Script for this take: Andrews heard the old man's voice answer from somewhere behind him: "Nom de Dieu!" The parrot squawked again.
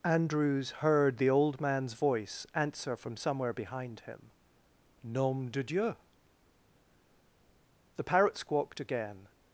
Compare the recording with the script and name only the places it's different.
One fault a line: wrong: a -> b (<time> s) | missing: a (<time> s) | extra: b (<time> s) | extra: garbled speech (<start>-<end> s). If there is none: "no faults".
no faults